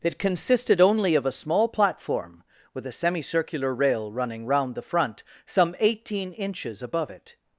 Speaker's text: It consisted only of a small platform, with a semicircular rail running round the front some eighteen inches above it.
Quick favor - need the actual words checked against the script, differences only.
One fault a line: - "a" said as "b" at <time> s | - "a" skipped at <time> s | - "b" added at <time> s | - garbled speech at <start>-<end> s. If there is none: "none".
none